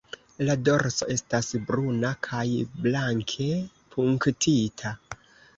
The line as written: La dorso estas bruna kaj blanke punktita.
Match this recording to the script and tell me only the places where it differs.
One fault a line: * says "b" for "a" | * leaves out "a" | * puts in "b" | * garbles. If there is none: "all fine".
all fine